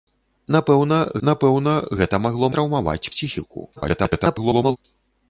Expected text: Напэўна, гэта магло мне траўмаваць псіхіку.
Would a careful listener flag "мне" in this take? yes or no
yes